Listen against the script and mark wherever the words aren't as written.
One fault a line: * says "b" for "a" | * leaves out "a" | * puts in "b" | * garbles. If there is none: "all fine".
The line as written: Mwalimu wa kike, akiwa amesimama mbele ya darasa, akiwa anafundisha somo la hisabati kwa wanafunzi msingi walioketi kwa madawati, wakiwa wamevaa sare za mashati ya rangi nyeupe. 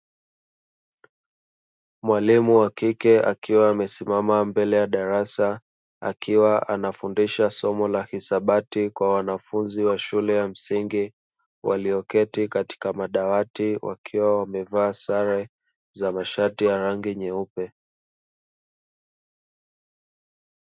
* puts in "wa shule ya"
* says "katika" for "kwa"